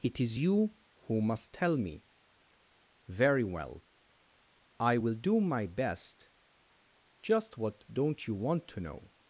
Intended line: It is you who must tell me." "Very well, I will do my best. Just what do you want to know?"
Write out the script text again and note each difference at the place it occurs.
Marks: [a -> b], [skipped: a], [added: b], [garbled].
It is you who must tell me." "Very well, I will do my best. Just what [do -> don't] you want to know?"